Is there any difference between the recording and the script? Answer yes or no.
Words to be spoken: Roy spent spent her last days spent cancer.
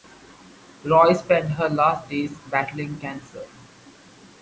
yes